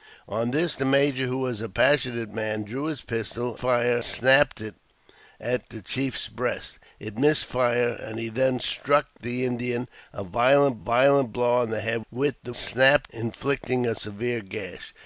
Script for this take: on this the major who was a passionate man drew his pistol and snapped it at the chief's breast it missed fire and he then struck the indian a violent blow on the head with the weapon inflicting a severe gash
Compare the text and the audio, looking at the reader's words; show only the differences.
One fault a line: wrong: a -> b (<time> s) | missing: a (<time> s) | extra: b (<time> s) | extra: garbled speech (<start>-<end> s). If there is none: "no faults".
wrong: and -> fire (3.5 s)
extra: violent (10.8 s)
wrong: weapon -> snapped (12.5 s)